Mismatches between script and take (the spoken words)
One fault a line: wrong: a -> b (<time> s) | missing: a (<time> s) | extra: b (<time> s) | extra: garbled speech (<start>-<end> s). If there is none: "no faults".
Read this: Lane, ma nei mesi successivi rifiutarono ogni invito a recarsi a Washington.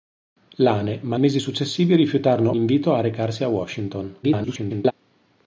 missing: nei (1.2 s)
missing: ogni (2.5 s)
extra: garbled speech (4.2-4.9 s)